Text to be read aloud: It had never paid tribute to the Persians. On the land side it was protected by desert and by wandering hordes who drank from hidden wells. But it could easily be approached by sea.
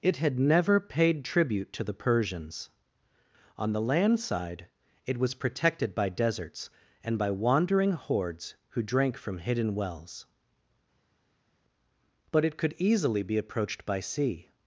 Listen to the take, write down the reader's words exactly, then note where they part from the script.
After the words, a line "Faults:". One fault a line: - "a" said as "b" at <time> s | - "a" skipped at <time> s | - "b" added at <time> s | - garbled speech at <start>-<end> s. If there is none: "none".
It had never paid tribute to the Persians. On the land side it was protected by deserts and by wandering hordes who drank from hidden wells. But it could easily be approached by sea.
Faults:
- "desert" said as "deserts" at 6.1 s